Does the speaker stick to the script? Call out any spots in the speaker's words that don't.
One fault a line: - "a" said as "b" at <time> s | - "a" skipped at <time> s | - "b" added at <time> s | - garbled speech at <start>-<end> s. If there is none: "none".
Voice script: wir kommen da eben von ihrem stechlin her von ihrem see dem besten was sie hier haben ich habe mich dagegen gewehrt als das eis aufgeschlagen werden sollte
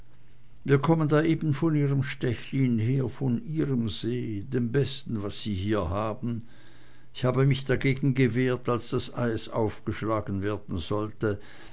none